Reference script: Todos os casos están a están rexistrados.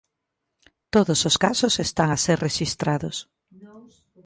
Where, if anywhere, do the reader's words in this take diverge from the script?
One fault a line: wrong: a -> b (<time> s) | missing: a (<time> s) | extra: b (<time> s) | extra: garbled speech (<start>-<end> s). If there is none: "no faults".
wrong: están -> ser (2.2 s)